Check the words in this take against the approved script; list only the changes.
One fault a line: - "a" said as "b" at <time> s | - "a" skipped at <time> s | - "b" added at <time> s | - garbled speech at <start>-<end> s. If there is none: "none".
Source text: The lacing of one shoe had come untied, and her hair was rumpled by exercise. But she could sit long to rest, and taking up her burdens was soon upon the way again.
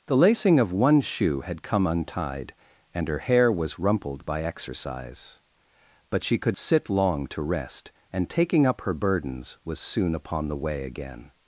none